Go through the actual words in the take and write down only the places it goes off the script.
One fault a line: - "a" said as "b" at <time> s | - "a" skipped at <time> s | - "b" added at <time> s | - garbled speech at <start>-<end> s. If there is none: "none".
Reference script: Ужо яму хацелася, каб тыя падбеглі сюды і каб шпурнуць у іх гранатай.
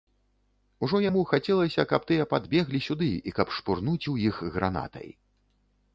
none